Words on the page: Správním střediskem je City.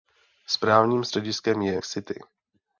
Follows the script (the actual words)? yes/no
yes